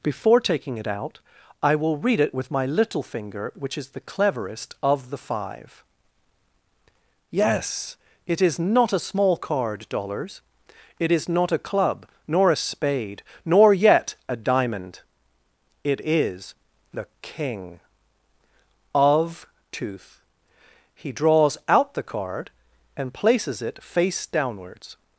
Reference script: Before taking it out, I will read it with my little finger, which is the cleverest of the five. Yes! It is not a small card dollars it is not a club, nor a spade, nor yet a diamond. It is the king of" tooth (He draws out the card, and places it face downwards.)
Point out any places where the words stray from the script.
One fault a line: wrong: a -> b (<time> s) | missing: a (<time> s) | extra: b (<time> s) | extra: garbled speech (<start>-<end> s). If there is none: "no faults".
no faults